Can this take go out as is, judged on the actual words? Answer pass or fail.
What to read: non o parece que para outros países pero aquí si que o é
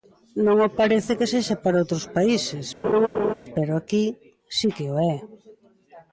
fail